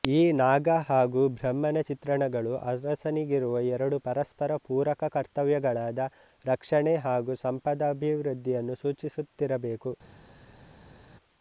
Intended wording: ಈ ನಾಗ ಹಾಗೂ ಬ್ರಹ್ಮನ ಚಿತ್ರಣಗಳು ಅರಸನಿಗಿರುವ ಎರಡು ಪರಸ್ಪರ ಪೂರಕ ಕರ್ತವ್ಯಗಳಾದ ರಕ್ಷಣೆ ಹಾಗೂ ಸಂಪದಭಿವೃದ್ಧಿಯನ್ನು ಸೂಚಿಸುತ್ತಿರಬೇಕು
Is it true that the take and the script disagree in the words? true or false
false